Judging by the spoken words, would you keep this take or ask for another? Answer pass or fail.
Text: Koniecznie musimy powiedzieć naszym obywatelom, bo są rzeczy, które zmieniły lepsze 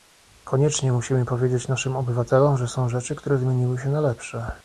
fail